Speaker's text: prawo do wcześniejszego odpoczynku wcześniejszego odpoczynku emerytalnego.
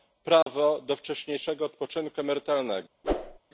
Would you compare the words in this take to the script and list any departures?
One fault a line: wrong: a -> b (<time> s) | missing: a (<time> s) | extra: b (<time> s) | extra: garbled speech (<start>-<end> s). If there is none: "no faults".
missing: wcześniejszego odpoczynku (2.2 s)